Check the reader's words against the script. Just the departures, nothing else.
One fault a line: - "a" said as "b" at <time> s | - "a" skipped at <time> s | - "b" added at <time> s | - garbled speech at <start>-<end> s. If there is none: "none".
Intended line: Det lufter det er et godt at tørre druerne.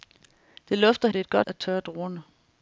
none